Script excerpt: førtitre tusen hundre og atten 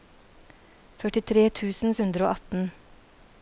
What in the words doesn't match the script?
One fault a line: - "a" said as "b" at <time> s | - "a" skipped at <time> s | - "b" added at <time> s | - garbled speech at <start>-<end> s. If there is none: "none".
none